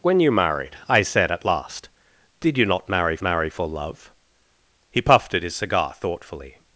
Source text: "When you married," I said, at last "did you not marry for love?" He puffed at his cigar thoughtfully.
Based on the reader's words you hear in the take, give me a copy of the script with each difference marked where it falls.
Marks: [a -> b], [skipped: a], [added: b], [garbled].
"When you married," I said, at last "did you not marry [added: marry] for love?" He puffed at his cigar thoughtfully.